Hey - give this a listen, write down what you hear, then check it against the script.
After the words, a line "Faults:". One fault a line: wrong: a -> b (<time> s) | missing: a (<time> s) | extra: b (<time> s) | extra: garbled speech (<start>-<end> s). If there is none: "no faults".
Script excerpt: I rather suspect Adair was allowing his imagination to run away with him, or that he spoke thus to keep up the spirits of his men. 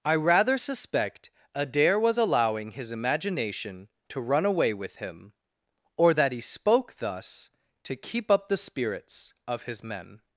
I rather suspect Adair was allowing his imagination to run away with him, or that he spoke thus to keep up the spirits of his men.
Faults:
no faults